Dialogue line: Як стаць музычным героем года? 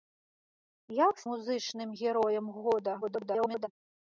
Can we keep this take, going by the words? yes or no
no